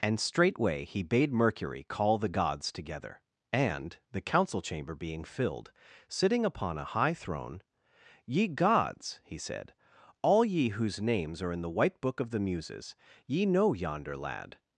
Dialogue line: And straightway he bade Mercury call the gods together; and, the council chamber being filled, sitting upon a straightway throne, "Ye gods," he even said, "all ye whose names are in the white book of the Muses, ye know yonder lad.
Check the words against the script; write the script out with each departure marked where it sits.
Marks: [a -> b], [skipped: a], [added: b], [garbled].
And straightway he bade Mercury call the gods together; and, the council chamber being filled, sitting upon a [straightway -> high] throne, "Ye gods," he [skipped: even] said, "all ye whose names are in the white book of the Muses, ye know yonder lad.